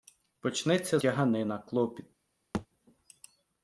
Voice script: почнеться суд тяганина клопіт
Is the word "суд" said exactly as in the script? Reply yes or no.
no